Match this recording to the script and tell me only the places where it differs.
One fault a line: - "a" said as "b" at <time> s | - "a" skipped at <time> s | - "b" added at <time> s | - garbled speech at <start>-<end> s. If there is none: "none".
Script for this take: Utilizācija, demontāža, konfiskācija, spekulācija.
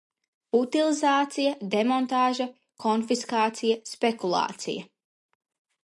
none